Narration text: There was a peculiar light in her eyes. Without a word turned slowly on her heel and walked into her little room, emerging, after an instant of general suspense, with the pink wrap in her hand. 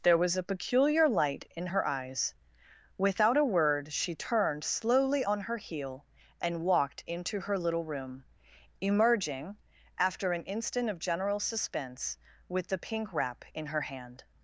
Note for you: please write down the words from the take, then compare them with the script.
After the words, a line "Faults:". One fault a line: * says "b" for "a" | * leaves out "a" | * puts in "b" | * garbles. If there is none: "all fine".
There was a peculiar light in her eyes. Without a word she turned slowly on her heel and walked into her little room, emerging, after an instant of general suspense, with the pink wrap in her hand.
Faults:
* puts in "she"